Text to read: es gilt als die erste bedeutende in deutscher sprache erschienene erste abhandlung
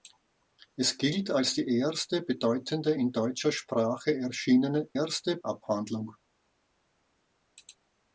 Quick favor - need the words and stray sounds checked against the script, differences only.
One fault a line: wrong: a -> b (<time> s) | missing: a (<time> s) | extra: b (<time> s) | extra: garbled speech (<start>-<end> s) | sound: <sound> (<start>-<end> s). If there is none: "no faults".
no faults